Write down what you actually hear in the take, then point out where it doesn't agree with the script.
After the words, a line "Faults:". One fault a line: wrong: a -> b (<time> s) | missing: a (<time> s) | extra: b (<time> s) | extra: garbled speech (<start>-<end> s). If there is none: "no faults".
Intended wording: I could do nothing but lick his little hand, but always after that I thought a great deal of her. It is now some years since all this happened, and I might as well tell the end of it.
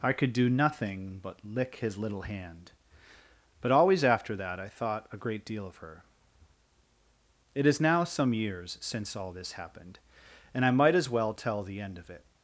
I could do nothing but lick his little hand, but always after that I thought a great deal of her. It is now some years since all this happened, and I might as well tell the end of it.
Faults:
no faults